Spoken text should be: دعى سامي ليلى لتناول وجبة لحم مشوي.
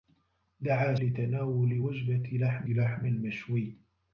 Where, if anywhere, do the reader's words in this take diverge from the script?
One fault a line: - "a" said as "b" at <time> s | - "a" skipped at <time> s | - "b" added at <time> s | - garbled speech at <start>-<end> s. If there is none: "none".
- "سامي ليلى" skipped at 0.9 s
- "لحم" added at 2.7 s